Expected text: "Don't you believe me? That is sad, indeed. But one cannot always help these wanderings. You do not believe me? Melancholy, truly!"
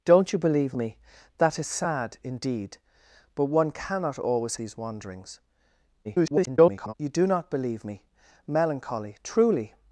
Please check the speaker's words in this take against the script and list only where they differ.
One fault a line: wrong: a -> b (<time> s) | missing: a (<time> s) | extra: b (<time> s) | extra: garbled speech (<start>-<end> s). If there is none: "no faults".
missing: help (4.6 s)
extra: garbled speech (6.0-6.9 s)